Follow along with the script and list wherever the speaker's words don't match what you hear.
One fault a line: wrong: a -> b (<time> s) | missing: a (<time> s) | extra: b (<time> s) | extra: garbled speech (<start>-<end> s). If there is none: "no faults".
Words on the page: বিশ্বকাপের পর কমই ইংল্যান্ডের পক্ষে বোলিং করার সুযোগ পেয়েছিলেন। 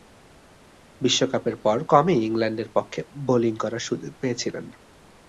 no faults